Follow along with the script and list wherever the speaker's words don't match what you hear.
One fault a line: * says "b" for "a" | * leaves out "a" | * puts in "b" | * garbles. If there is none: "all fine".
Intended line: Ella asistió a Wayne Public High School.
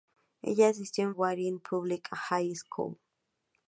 all fine